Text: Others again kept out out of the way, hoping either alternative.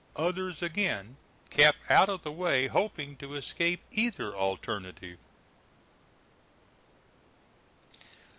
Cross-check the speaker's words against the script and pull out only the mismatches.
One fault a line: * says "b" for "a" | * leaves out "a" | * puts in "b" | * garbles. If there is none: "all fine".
* leaves out "out"
* puts in "to escape"